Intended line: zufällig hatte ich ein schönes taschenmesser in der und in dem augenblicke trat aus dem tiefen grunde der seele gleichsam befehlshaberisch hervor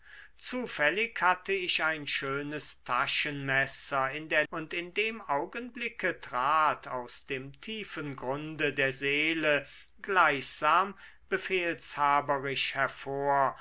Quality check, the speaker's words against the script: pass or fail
pass